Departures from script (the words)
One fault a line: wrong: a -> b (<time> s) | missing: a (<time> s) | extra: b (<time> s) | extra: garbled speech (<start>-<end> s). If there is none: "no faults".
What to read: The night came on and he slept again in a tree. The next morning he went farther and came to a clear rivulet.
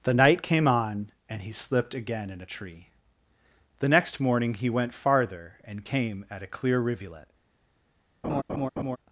wrong: slept -> slipped (1.5 s)
wrong: to -> at (6.3 s)